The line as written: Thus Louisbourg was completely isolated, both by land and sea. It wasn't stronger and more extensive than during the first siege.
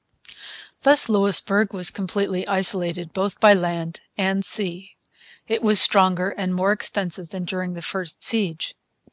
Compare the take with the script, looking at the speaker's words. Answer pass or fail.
fail